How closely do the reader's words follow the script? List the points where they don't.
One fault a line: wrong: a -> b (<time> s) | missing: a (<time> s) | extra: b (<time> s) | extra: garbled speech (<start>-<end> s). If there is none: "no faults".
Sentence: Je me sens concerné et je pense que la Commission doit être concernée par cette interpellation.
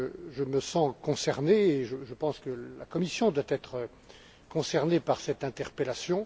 no faults